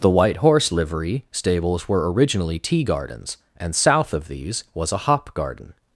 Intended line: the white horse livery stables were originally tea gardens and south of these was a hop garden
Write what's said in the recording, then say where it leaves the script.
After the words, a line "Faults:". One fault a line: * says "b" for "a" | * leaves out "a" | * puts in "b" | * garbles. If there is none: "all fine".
the white horse livery stables were originally tea gardens and south of these was a hop garden
Faults:
all fine